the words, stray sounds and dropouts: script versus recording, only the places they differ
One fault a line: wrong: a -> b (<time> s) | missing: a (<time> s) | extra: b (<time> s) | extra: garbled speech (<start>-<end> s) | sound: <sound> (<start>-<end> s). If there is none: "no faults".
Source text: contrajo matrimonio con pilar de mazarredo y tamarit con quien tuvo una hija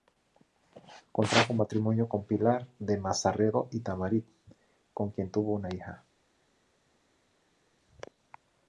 no faults